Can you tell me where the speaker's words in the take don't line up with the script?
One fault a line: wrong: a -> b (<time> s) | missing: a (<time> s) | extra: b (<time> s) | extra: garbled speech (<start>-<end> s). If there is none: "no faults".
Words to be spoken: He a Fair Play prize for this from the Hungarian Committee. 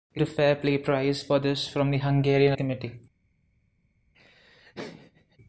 no faults